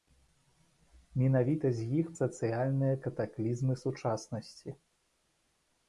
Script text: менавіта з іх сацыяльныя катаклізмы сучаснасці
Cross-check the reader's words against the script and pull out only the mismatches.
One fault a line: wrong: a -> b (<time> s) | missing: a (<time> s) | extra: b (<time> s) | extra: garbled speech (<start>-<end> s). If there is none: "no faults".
no faults